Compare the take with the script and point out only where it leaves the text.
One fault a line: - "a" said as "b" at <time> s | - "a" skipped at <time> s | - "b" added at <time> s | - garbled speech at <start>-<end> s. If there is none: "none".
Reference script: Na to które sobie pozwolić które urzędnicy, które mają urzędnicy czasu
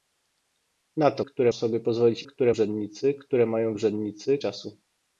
none